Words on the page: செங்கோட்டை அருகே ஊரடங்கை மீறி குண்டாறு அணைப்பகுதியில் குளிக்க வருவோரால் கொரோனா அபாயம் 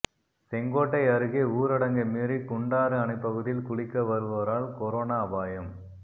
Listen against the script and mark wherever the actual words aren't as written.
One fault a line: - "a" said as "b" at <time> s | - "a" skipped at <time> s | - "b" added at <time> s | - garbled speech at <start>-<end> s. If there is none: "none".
none